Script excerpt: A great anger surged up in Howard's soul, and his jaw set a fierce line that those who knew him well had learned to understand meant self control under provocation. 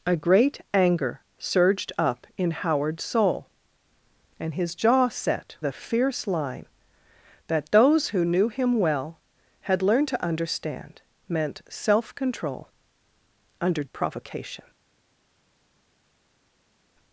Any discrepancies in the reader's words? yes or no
no